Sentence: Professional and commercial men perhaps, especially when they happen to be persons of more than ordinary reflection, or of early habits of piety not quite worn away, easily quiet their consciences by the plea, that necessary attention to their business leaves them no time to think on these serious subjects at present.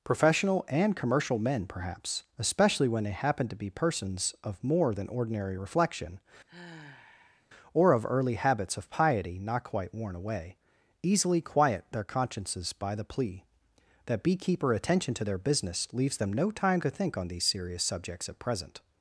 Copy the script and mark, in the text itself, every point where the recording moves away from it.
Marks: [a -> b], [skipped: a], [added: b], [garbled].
Professional and commercial men perhaps, especially when they happen to be persons of more than ordinary reflection, or of early habits of piety not quite worn away, easily quiet their consciences by the plea, that [necessary -> beekeeper] attention to their business leaves them no time to think on these serious subjects at present.